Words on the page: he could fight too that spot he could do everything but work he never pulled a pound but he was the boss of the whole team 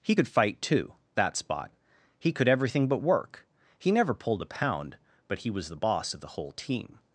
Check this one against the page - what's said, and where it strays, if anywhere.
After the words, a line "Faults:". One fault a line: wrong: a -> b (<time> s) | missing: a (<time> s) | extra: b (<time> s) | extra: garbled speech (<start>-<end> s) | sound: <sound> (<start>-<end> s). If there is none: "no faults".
he could fight too that spot he could everything but work he never pulled a pound but he was the boss of the whole team
Faults:
missing: do (2.5 s)